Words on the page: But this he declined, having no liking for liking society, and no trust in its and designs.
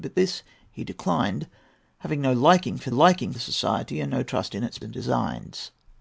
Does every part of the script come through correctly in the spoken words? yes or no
yes